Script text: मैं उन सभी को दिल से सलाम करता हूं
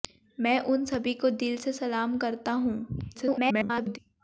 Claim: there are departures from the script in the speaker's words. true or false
true